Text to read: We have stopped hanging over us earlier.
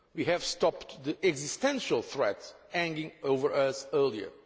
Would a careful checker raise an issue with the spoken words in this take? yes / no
yes